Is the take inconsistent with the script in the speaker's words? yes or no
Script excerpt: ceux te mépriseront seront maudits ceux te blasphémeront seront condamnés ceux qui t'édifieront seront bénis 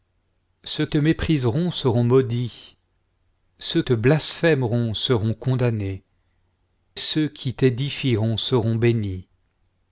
no